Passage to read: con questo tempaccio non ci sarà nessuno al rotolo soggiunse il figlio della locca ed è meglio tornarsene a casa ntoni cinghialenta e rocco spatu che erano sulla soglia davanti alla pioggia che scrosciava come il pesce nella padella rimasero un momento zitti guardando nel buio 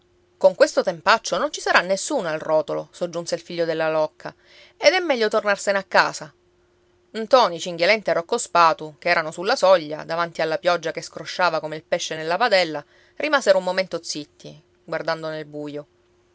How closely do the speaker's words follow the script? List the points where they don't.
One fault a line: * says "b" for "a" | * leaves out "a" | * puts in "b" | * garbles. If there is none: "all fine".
all fine